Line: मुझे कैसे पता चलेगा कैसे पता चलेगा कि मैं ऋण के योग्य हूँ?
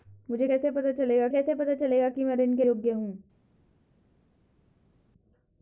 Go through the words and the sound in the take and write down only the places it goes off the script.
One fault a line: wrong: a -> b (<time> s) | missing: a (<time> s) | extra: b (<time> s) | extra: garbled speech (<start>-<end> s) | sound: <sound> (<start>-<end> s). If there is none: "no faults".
no faults